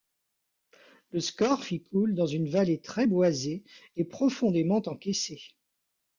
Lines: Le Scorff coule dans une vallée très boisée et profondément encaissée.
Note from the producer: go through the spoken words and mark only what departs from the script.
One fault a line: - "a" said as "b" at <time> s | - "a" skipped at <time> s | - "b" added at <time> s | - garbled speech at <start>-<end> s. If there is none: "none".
- "y" added at 1.7 s